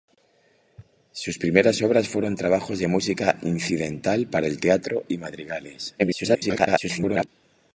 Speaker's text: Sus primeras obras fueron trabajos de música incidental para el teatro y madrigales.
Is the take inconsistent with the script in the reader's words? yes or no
yes